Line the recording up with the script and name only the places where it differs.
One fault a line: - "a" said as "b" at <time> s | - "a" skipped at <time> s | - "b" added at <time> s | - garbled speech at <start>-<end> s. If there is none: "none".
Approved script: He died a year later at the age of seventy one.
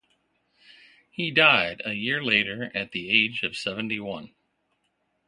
none